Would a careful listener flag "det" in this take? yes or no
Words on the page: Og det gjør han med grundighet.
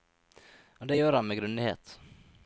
no